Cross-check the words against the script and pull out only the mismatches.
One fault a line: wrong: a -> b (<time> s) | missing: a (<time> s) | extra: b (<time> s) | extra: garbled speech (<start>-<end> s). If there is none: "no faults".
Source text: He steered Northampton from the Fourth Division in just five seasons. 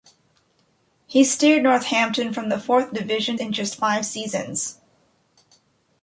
no faults